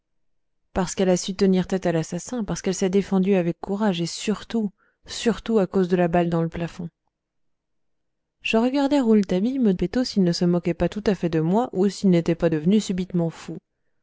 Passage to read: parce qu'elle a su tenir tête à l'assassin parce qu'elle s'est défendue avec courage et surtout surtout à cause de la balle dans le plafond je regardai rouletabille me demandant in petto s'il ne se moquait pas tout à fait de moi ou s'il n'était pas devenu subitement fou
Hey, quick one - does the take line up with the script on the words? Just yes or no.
no